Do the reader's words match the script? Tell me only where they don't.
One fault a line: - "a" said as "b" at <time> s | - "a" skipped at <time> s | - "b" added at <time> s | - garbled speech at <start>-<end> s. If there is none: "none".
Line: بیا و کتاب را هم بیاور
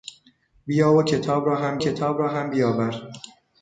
- "کتاب را هم" added at 1.8 s